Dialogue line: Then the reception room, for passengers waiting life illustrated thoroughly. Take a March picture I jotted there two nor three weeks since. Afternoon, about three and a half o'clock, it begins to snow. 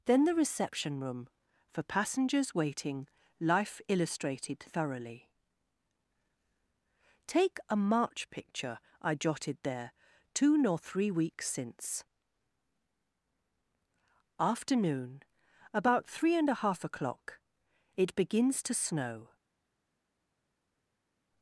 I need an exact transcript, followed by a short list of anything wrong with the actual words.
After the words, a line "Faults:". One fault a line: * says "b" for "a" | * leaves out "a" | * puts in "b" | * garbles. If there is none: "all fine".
Then the reception room, for passengers waiting life illustrated thoroughly. Take a March picture I jotted there two nor three weeks since. Afternoon, about three and a half o'clock, it begins to snow.
Faults:
all fine